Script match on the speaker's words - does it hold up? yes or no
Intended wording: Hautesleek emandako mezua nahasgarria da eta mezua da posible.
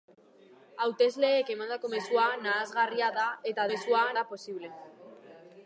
yes